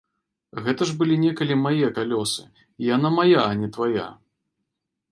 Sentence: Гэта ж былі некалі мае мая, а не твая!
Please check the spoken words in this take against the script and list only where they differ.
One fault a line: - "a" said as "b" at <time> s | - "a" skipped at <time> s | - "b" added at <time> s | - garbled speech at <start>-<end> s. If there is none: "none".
- "калёсы і яна" added at 2.0 s